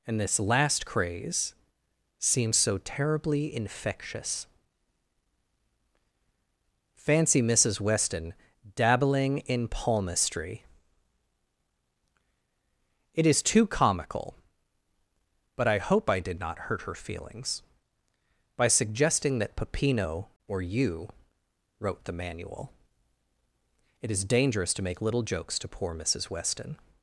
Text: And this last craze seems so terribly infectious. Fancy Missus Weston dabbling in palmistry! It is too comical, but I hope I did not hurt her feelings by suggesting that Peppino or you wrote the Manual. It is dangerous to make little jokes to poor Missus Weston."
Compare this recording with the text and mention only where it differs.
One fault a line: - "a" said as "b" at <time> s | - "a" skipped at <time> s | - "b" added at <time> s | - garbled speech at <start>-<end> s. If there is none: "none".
none